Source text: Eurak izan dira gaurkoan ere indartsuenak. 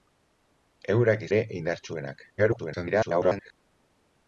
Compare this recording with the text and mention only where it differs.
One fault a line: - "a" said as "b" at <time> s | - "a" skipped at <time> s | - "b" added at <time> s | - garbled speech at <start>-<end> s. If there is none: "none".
- "izan dira gaurkoan" skipped at 1.3 s
- garbled speech at 2.4-3.5 s